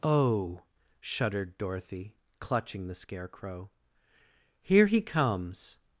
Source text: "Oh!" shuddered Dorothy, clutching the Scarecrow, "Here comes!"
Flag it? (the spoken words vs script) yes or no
yes